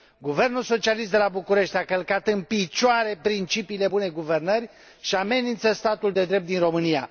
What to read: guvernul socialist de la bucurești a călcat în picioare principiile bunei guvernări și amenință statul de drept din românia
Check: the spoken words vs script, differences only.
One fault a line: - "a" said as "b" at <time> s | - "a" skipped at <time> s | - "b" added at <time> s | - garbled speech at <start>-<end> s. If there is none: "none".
none